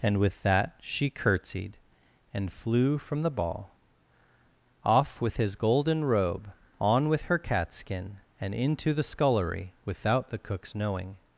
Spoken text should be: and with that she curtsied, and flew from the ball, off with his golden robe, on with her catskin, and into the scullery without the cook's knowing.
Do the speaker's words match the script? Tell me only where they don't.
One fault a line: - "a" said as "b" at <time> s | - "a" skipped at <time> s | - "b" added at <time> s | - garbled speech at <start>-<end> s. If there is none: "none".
none